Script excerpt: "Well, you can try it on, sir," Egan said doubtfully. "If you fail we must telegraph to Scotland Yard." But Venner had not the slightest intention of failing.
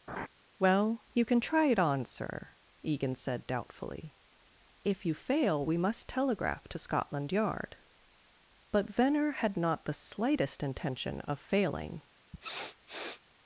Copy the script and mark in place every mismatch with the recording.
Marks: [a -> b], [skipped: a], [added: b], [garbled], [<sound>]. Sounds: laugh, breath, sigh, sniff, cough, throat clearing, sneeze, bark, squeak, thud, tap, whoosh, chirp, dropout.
[laugh] "Well, you can try it on, sir," Egan said doubtfully. "If you fail we must telegraph to Scotland Yard." But Venner had not the slightest intention of failing. [sniff]